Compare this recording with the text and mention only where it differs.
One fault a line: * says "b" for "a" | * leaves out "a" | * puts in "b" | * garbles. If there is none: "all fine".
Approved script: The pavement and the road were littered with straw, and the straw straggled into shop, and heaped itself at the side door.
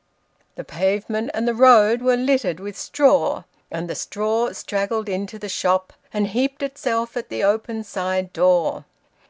* puts in "the"
* puts in "open"